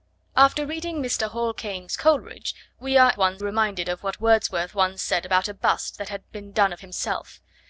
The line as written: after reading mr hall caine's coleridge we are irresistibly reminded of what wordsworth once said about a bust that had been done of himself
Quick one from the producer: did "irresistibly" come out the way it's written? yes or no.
no